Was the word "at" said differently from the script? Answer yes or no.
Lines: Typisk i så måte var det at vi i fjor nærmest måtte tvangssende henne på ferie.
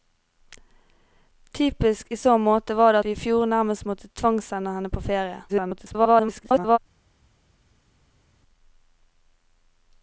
yes